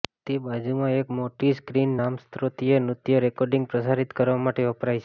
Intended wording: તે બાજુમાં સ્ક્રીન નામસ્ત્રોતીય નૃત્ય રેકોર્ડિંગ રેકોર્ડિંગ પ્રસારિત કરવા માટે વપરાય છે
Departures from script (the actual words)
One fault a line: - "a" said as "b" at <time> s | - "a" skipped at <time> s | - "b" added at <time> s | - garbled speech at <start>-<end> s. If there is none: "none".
- "એક મોટી" added at 0.9 s
- "રેકોર્ડિંગ" skipped at 3.7 s